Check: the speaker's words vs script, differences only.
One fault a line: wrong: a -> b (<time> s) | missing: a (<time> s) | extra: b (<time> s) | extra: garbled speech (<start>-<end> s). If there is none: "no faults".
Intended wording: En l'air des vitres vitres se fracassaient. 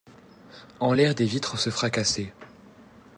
missing: vitres (1.6 s)